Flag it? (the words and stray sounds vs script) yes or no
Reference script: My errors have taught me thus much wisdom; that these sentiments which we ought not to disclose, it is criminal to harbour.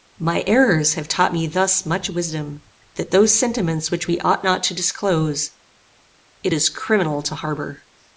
yes